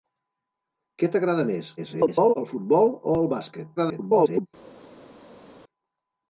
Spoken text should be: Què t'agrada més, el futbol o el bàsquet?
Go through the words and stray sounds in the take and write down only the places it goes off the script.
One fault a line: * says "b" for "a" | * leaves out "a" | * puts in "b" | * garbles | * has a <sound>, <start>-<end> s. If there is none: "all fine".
* garbles
* garbles